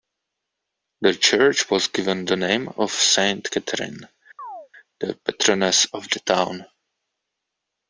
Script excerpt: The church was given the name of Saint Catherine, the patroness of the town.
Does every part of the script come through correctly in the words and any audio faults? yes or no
no